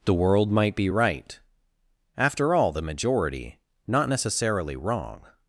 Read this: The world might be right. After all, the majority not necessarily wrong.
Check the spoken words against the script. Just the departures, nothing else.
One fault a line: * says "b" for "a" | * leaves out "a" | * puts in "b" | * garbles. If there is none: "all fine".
all fine